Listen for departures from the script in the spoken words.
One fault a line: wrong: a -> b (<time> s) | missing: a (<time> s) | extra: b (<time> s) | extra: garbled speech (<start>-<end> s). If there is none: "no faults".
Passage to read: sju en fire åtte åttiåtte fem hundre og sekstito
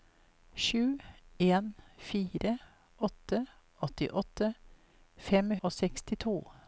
missing: hundre (5.5 s)